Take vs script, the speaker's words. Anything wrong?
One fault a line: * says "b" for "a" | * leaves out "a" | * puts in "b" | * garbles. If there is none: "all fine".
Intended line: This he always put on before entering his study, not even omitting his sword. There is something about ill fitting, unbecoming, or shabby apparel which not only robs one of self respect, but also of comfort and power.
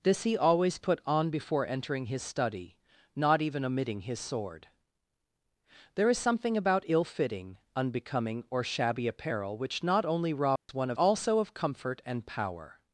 * leaves out "self respect but"